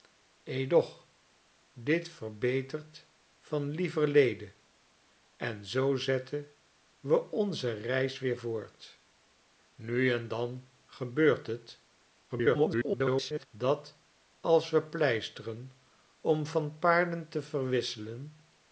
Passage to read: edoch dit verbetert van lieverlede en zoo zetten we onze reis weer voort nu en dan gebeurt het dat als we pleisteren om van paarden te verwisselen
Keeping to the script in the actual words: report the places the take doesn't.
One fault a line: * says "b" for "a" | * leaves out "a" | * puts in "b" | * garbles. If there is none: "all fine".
* garbles